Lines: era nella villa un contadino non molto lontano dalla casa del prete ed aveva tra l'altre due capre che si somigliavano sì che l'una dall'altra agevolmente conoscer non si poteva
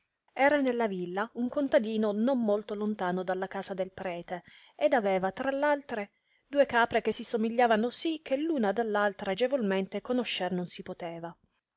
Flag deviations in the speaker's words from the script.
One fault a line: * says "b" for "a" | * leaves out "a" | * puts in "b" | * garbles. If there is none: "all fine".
all fine